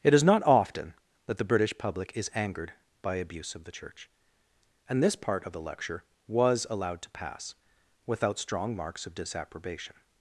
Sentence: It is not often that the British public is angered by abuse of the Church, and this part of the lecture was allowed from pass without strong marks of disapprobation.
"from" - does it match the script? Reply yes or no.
no